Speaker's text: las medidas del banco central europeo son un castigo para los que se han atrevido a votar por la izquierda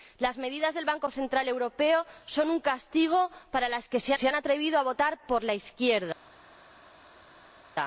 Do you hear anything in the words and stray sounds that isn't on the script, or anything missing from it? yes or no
yes